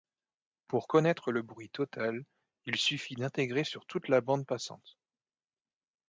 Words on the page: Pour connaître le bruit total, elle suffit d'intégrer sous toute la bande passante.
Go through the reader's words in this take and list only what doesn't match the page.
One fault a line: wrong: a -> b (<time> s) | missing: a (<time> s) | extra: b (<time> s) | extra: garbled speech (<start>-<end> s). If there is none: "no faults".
wrong: elle -> il (2.6 s)
wrong: sous -> sur (3.6 s)